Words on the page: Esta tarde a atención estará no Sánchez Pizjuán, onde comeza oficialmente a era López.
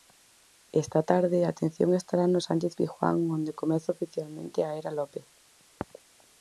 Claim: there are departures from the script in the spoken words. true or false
false